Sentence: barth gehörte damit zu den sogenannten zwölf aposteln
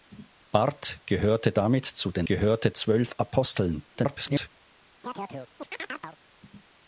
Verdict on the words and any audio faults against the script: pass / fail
fail